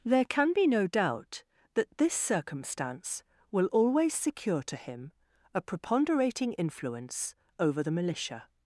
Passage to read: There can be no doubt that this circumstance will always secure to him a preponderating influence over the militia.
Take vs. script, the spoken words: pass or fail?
pass